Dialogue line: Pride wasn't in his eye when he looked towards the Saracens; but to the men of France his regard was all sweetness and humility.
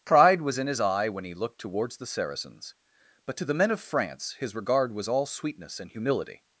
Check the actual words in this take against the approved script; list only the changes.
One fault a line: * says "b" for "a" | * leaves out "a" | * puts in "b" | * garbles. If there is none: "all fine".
* says "was" for "wasn't"